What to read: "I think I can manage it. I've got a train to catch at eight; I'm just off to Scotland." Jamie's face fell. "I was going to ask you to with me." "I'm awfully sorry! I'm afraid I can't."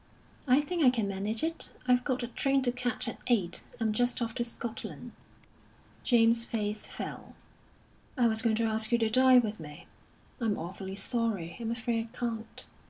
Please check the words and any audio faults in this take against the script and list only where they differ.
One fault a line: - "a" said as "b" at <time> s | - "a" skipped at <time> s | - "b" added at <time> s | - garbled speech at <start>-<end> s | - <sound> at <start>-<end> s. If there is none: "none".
- "dine" added at 9.1 s